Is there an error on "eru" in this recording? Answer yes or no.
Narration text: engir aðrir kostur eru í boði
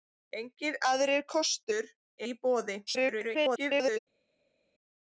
yes